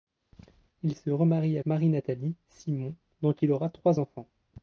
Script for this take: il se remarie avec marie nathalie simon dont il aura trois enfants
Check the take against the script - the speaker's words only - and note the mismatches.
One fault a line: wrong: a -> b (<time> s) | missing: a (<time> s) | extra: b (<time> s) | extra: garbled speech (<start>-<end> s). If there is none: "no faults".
missing: avec (1.6 s)